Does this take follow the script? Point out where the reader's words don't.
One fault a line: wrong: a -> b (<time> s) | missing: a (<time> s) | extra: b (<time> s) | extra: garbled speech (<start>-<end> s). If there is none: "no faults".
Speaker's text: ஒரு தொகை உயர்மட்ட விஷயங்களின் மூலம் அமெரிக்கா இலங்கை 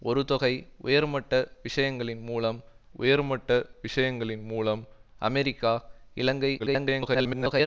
extra: உயர்மட்ட விஷயங்களின் மூலம் (3.0 s)
extra: garbled speech (6.6-7.7 s)